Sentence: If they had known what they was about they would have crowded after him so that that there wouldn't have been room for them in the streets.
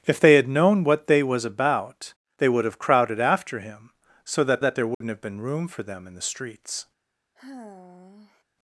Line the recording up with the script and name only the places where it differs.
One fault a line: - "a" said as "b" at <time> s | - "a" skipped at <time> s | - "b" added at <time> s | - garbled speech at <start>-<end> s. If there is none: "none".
none